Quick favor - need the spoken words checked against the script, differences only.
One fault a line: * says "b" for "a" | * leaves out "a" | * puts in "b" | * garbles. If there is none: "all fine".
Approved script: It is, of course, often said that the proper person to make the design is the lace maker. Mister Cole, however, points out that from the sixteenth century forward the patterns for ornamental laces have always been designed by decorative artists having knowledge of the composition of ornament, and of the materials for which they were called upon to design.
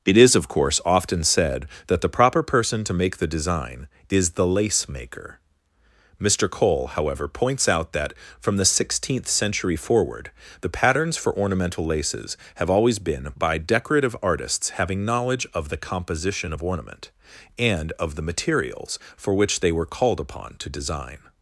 * leaves out "designed"